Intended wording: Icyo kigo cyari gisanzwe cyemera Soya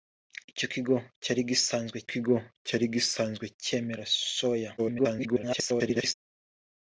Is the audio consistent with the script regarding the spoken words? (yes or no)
no